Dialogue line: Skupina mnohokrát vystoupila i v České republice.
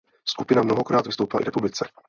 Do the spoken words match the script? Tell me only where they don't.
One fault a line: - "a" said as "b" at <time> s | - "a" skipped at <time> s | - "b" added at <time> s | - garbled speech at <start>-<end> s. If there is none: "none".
- "České" skipped at 1.4 s